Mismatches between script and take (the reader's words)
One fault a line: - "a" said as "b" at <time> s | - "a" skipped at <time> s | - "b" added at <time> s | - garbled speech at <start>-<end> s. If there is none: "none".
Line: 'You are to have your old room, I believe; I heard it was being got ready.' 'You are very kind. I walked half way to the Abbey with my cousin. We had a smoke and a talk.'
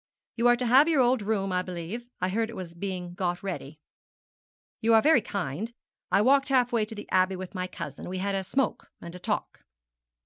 none